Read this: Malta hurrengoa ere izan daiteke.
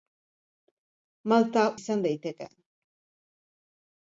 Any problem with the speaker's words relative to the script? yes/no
yes